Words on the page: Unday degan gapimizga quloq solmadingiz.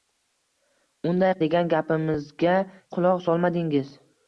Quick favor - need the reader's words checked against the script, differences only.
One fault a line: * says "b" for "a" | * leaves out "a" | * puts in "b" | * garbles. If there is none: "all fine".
all fine